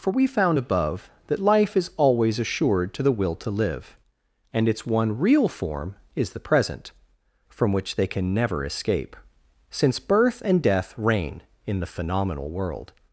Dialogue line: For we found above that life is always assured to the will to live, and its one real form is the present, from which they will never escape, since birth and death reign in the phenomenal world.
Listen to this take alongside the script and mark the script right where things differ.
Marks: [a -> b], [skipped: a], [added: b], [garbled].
For we found above that life is always assured to the will to live, and its one real form is the present, from which they [will -> can] never escape, since birth and death reign in the phenomenal world.